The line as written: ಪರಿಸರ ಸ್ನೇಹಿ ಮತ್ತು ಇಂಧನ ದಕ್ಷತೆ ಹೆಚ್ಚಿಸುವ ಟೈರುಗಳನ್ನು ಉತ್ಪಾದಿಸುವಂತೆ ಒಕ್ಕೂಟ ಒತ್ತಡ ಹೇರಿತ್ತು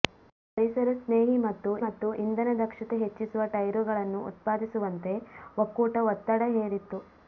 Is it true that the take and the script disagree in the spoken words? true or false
true